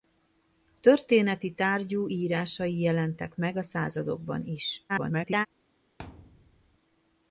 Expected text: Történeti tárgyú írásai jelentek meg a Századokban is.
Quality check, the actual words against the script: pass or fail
fail